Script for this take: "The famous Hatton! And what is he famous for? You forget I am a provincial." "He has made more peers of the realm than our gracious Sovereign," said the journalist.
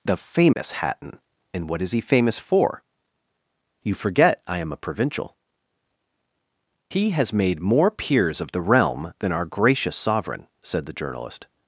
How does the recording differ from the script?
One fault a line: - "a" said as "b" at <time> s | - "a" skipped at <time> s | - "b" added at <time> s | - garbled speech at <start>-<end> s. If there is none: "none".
none